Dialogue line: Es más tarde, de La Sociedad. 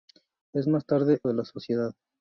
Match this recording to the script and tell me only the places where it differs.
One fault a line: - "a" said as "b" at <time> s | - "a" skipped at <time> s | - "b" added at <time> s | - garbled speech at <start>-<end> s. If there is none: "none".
none